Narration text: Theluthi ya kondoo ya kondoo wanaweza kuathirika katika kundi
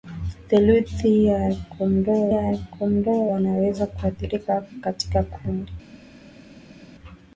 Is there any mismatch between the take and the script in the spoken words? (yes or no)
no